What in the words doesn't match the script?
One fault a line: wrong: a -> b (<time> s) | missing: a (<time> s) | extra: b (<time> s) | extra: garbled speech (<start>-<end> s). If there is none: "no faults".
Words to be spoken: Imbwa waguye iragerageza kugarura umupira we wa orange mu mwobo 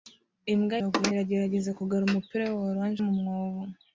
no faults